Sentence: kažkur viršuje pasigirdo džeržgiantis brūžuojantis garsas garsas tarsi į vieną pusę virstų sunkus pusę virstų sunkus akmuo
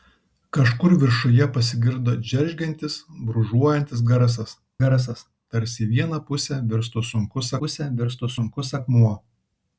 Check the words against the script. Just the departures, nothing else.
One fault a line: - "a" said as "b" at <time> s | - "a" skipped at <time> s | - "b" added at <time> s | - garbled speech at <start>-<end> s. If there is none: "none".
none